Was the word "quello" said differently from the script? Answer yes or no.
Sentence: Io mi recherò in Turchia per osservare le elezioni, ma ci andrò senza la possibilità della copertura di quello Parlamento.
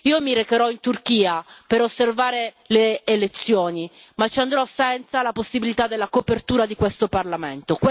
yes